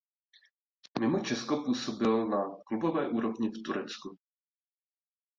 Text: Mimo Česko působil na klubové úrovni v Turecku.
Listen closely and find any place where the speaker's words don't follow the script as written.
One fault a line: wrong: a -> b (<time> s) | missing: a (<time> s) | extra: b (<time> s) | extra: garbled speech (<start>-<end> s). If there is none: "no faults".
no faults